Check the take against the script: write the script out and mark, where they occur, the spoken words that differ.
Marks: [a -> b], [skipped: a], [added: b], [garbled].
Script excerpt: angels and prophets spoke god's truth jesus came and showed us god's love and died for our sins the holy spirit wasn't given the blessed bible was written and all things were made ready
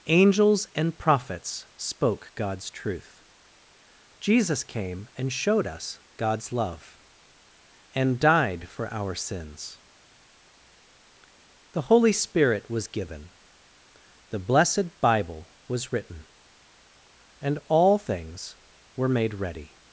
angels and prophets spoke god's truth jesus came and showed us god's love and died for our sins the holy spirit [wasn't -> was] given the blessed bible was written and all things were made ready